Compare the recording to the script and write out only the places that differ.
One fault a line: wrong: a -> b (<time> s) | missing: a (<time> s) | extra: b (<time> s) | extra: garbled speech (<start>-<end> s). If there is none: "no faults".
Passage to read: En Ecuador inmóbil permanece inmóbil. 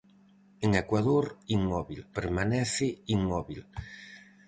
no faults